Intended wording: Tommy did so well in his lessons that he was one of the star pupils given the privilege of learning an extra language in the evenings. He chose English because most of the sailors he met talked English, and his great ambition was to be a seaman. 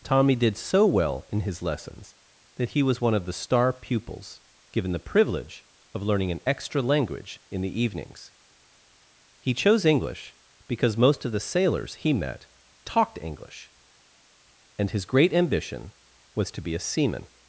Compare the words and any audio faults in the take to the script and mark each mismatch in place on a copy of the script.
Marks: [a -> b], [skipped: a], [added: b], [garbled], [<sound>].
Tommy did so well in his lessons that he was one of the star pupils given the privilege of learning an extra language in the evenings. He chose English because most of the sailors he met talked English, and his great ambition was to be a seaman.